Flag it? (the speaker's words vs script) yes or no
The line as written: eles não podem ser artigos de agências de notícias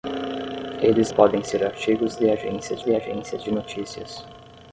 yes